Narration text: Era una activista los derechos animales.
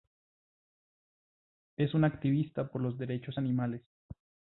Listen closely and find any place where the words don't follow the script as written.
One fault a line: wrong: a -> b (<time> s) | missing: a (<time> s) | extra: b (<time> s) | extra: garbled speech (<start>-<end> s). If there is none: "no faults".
wrong: Era -> Es (1.8 s)
extra: por (2.7 s)